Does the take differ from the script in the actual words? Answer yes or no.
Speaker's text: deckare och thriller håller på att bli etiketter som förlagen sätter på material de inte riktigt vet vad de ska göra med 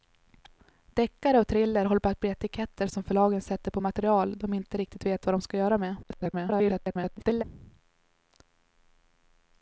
yes